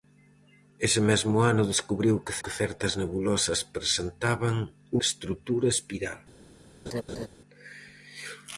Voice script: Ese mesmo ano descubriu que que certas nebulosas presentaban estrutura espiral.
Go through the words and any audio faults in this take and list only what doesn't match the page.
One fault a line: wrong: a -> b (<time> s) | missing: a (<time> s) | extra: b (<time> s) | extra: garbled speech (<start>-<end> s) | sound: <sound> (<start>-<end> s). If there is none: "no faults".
sound: laugh (6.9-7.3 s)